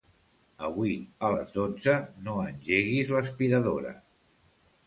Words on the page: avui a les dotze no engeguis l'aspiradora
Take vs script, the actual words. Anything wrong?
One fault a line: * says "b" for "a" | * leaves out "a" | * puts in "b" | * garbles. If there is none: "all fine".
all fine